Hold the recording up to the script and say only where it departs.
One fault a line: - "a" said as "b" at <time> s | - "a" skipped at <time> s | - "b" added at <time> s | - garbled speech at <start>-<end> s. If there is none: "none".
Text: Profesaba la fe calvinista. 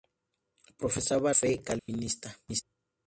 - "la" skipped at 1.4 s